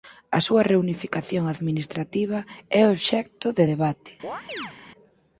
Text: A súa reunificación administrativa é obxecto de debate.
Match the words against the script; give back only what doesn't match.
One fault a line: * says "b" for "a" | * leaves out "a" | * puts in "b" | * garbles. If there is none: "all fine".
all fine